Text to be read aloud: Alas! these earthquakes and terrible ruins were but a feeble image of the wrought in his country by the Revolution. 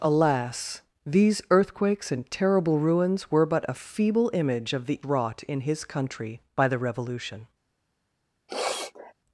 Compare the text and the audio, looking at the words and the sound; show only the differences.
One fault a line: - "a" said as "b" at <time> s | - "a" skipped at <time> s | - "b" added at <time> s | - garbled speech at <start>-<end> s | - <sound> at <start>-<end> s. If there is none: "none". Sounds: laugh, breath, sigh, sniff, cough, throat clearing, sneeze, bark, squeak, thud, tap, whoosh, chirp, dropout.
- sniff at 8.5-9.1 s